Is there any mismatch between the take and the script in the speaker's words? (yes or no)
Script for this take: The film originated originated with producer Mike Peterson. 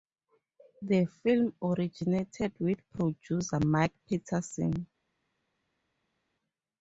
yes